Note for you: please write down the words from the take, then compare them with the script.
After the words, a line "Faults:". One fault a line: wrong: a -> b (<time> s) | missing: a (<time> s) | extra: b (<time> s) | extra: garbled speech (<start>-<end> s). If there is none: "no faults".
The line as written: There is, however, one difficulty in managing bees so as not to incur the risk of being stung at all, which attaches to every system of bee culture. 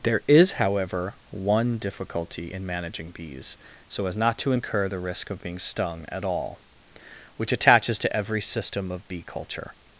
There is, however, one difficulty in managing bees so as not to incur the risk of being stung at all, which attaches to every system of bee culture.
Faults:
no faults